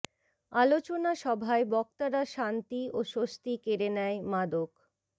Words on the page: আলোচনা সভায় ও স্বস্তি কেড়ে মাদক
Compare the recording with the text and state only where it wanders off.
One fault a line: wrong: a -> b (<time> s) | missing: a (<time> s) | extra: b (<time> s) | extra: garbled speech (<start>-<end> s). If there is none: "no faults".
extra: বক্তারা শান্তি (1.7 s)
extra: নেয় (4.0 s)